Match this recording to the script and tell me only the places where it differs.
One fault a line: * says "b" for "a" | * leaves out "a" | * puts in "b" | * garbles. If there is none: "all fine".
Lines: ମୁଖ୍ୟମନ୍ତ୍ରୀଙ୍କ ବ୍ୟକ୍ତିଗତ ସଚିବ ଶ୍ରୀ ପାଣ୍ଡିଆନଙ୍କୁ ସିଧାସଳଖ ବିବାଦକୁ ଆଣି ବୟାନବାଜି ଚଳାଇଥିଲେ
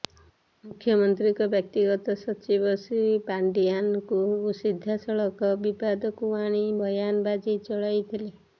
all fine